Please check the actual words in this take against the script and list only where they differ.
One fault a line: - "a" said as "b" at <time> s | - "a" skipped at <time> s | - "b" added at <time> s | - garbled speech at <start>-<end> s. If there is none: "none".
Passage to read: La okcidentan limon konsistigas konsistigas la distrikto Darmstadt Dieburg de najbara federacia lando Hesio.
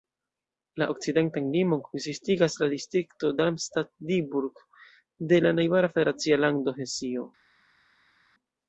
- "konsistigas" skipped at 2.5 s
- "la" added at 5.5 s